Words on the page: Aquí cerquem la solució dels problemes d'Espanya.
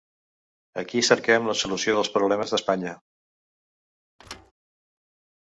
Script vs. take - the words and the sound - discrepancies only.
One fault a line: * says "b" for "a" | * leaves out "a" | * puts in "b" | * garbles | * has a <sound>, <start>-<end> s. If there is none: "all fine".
* has a thud, 4.2-4.5 s